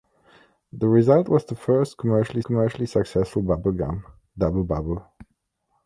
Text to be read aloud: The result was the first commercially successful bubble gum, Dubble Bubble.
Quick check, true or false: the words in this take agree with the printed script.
false